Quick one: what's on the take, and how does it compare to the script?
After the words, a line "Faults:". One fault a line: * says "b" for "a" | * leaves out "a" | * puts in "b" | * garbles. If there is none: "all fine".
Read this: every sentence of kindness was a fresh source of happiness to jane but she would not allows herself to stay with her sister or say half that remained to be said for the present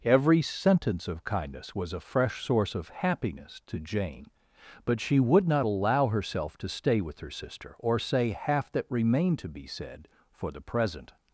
every sentence of kindness was a fresh source of happiness to jane but she would not allow herself to stay with her sister or say half that remained to be said for the present
Faults:
* says "allow" for "allows"